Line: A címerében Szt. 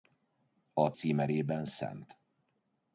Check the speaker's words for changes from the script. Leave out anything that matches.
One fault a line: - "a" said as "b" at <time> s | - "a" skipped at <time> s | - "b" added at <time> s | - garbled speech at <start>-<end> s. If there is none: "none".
none